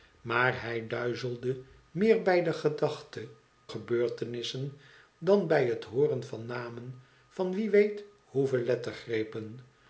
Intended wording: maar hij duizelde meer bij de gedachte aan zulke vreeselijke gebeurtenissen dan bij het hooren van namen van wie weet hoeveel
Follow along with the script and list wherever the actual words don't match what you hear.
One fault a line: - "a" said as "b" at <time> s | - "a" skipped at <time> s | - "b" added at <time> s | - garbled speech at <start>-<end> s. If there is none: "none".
- "aan zulke vreeselijke" skipped at 3.3 s